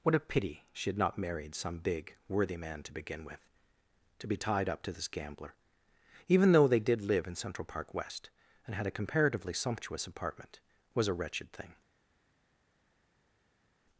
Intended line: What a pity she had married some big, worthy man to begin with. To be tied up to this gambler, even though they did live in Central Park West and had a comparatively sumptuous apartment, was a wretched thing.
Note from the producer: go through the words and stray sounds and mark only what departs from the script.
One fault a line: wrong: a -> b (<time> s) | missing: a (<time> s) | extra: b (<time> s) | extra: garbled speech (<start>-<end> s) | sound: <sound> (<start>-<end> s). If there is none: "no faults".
extra: not (1.0 s)